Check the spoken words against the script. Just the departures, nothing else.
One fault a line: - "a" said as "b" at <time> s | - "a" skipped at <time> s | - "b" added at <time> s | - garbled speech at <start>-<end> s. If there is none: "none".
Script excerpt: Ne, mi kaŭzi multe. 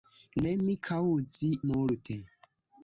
none